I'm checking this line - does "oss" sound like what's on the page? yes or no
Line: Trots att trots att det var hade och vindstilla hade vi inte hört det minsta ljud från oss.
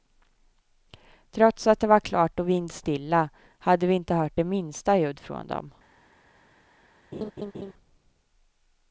no